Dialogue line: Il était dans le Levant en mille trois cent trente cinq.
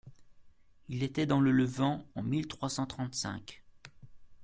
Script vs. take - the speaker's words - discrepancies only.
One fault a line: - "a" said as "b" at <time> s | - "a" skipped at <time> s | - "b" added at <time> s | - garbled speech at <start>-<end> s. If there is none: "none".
none